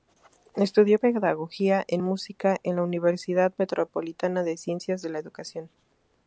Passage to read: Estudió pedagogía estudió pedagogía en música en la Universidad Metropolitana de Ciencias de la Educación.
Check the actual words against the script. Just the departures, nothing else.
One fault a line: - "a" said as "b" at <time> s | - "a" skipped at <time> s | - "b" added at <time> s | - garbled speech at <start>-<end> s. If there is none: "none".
- "estudió pedagogía" skipped at 1.8 s